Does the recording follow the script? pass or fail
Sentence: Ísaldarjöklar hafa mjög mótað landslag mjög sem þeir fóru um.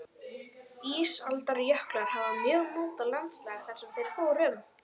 fail